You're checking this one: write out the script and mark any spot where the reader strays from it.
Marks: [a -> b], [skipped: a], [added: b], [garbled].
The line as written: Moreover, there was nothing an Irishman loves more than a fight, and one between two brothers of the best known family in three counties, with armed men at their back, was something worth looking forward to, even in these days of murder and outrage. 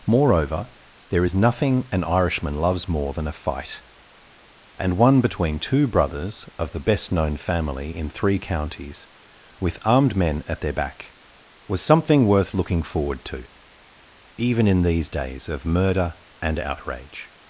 Moreover, there [was -> is] nothing an Irishman loves more than a fight, and one between two brothers of the best known family in three counties, with armed men at their back, was something worth looking forward to, even in these days of murder and outrage.